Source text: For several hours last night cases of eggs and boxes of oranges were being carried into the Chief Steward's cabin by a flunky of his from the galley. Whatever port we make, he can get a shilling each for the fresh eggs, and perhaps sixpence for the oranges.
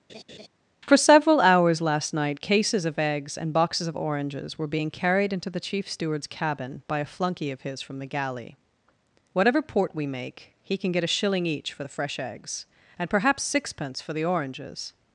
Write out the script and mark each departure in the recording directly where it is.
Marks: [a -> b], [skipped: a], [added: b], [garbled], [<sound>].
[laugh] For several hours last night cases of eggs and boxes of oranges were being carried into the Chief Steward's cabin by a flunky of his from the galley. Whatever port we make, he can get a shilling each for the fresh eggs, and perhaps sixpence for the oranges.